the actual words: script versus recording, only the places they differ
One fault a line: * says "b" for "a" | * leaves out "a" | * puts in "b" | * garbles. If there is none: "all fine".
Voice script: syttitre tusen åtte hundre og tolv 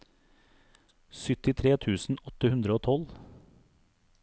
all fine